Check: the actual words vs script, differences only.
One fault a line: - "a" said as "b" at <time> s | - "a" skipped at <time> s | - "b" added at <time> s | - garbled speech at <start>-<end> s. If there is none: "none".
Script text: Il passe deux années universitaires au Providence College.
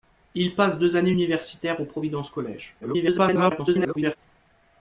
- garbled speech at 2.8-4.2 s